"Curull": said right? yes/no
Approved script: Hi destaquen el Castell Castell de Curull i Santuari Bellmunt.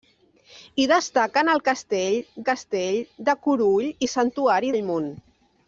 yes